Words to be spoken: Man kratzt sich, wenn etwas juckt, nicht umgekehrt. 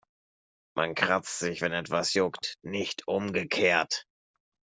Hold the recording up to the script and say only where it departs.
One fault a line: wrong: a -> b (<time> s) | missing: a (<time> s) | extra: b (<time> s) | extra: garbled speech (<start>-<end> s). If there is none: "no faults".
no faults